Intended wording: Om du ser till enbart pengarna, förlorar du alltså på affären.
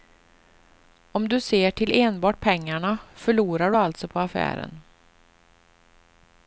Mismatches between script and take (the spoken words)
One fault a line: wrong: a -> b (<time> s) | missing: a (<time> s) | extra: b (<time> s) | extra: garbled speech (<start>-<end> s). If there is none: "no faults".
no faults